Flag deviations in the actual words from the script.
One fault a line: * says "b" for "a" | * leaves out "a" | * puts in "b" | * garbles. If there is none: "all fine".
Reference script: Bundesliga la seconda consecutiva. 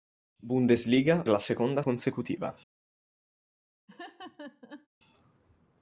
all fine